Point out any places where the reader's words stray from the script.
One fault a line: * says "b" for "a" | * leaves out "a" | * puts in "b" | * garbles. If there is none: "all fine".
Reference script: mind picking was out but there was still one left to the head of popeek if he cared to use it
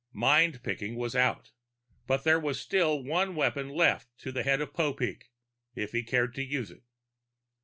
* puts in "weapon"